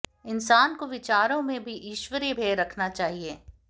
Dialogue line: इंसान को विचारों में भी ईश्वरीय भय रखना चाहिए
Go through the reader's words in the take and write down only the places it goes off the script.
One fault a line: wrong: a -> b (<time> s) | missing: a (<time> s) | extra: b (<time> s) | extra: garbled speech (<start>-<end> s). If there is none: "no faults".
no faults